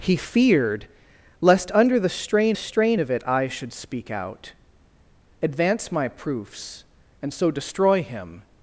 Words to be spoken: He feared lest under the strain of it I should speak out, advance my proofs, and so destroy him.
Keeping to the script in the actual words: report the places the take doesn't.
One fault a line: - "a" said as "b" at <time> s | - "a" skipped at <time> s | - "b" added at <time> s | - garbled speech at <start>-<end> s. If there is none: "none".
- "strain" added at 2.5 s